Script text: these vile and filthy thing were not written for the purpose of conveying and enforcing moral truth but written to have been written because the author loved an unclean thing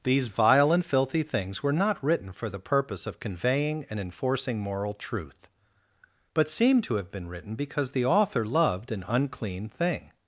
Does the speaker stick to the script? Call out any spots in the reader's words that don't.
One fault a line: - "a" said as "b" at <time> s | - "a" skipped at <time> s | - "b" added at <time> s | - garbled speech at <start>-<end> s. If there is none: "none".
- "thing" said as "things" at 1.2 s
- "written" said as "seem" at 6.5 s